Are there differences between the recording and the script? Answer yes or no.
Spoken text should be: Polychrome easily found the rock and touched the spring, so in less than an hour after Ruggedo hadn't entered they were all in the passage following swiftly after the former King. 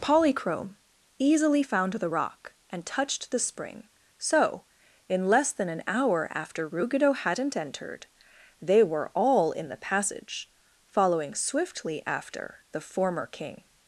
no